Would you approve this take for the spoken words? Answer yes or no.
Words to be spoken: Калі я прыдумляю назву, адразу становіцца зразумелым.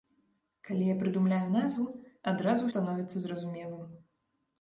yes